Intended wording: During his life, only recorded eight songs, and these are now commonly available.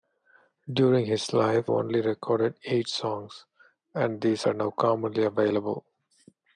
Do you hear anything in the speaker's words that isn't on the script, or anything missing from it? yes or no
no